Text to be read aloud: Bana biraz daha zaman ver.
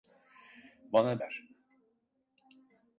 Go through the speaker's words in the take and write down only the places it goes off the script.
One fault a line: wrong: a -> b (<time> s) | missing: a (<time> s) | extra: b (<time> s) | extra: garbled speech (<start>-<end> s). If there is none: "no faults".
missing: biraz daha zaman (1.2 s)